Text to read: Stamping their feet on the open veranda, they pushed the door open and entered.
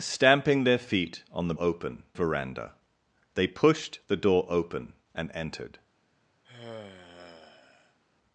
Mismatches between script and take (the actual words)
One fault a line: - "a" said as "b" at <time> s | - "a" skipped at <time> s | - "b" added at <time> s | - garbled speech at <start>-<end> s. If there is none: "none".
none